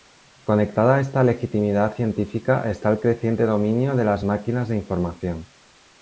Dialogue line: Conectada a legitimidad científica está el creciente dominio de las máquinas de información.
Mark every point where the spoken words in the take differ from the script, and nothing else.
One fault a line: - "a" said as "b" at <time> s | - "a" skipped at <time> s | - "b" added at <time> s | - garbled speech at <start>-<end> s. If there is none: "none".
- "esta" added at 1.0 s